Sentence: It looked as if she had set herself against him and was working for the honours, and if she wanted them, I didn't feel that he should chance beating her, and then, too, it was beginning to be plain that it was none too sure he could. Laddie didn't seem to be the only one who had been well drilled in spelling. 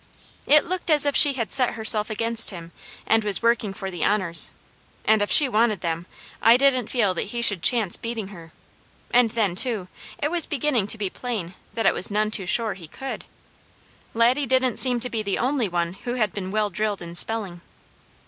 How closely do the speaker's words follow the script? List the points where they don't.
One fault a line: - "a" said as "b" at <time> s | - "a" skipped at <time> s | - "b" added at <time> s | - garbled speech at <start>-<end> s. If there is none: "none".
none